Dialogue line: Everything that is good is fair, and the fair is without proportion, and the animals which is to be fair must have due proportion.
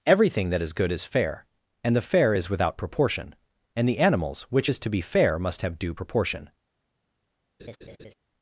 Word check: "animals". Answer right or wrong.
right